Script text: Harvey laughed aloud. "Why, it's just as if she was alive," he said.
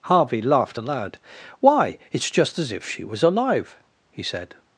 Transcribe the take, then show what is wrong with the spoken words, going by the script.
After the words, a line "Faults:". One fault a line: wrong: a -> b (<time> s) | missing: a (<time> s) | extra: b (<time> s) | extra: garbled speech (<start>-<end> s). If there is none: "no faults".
Harvey laughed aloud. "Why, it's just as if she was alive," he said.
Faults:
no faults